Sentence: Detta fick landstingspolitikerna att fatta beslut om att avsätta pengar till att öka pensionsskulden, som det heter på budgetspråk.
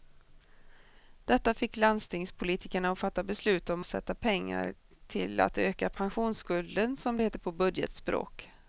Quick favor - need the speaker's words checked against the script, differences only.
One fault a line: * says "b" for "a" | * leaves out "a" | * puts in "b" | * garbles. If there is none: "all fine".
* leaves out "att"